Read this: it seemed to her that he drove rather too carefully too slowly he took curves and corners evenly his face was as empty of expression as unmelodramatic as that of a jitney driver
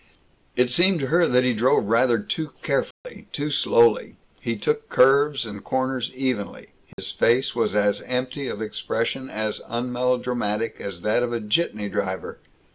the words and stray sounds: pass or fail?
fail